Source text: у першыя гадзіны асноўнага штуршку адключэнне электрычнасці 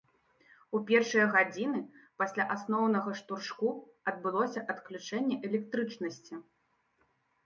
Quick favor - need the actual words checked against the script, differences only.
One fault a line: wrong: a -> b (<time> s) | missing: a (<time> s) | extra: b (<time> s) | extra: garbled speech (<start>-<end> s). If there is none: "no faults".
extra: пасля (2.2 s)
extra: адбылося (4.1 s)